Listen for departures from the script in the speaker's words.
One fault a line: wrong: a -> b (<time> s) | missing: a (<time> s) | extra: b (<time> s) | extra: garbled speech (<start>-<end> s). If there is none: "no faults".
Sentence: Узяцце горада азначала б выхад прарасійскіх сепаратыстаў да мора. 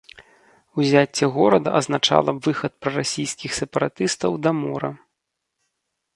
no faults